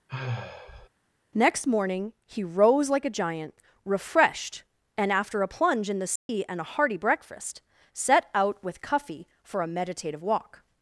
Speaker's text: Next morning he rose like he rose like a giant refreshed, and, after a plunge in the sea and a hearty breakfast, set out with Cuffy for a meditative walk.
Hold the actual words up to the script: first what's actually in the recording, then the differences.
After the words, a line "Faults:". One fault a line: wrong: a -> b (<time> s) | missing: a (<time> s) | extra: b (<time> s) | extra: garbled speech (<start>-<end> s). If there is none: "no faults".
Next morning he rose like a giant refreshed, and, after a plunge in the sea and a hearty breakfast, set out with Cuffy for a meditative walk.
Faults:
missing: he rose like (3.0 s)